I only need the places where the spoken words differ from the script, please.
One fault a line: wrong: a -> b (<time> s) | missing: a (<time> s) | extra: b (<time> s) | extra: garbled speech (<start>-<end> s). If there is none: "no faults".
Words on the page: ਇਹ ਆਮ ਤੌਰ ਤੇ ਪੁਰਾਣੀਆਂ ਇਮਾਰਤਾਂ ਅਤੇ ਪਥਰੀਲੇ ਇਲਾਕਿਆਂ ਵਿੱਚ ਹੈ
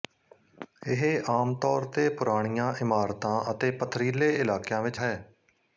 no faults